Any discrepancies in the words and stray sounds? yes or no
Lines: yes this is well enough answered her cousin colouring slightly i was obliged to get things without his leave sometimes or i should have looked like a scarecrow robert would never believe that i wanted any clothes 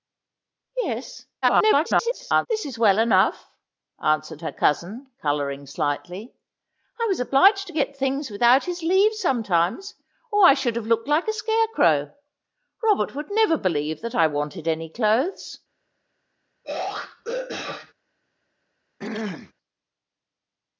yes